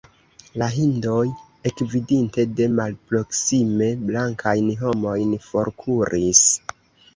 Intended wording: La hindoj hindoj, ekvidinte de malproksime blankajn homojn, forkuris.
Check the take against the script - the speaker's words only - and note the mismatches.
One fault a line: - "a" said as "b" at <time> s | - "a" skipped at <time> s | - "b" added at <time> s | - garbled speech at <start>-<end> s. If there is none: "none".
- "hindoj" skipped at 1.2 s